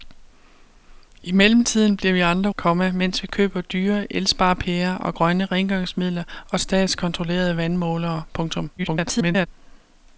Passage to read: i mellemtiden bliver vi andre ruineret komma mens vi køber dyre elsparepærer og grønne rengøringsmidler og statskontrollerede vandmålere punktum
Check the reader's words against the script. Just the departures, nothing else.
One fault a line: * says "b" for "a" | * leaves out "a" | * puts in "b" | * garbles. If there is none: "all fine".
* leaves out "ruineret"
* garbles